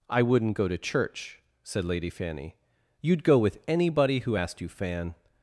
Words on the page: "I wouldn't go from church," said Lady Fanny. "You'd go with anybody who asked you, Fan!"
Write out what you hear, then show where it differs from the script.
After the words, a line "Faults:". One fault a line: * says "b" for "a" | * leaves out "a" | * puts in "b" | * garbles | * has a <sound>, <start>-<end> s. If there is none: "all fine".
"I wouldn't go to church," said Lady Fanny. "You'd go with anybody who asked you, Fan!"
Faults:
* says "to" for "from"